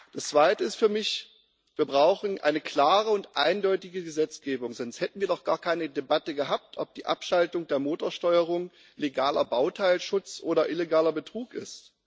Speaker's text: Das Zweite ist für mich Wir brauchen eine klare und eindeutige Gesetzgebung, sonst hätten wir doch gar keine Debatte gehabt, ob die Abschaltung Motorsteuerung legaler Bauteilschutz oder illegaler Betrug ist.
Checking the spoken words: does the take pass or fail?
fail